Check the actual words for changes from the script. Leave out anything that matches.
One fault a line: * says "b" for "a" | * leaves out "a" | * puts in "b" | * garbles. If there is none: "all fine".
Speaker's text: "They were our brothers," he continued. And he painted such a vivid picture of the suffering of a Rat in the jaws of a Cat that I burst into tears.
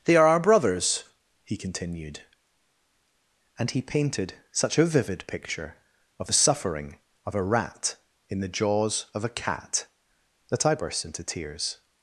* says "are" for "were"